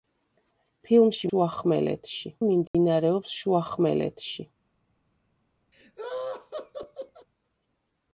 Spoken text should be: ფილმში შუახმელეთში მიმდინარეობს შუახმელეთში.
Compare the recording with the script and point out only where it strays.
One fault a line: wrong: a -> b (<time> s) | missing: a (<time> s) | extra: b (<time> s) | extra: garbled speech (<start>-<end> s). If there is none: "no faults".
no faults